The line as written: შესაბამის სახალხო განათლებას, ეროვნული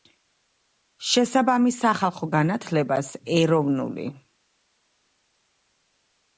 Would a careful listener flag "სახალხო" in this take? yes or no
no